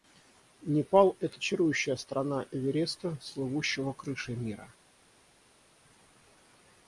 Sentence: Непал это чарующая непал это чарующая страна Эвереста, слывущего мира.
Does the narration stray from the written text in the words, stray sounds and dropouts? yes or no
yes